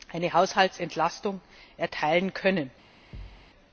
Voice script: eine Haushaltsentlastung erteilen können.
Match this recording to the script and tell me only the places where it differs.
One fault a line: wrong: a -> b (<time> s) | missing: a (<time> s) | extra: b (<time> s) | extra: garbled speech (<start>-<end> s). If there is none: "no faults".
no faults